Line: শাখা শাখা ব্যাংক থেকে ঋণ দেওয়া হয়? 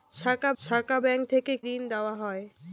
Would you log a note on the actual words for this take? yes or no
no